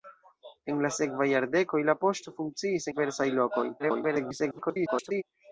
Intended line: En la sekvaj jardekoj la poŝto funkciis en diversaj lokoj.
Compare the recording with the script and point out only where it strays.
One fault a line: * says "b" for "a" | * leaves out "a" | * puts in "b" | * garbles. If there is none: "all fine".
* leaves out "en"
* garbles